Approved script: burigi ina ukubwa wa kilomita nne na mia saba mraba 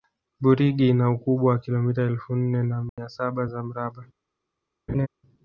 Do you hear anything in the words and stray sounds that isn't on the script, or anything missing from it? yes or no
yes